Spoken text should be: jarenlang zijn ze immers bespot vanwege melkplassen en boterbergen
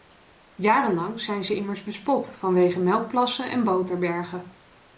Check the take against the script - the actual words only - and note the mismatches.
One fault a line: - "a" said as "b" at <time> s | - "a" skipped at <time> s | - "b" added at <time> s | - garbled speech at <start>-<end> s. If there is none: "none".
none